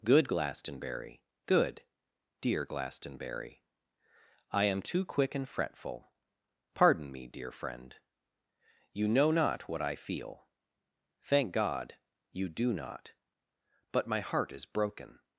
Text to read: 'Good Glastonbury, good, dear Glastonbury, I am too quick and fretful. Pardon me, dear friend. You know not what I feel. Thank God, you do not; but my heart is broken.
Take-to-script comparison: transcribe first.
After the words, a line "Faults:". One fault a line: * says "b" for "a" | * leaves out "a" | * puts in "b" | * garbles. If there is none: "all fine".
'Good Glastonbury, good, dear Glastonbury, I am too quick and fretful. Pardon me, dear friend. You know not what I feel. Thank God, you do not; but my heart is broken.
Faults:
all fine